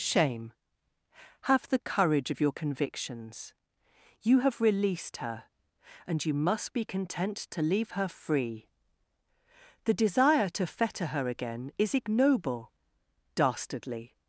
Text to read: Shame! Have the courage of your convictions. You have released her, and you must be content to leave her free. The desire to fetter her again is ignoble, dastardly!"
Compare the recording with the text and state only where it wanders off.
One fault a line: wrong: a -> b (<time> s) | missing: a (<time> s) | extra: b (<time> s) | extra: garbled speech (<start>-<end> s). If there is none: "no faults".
no faults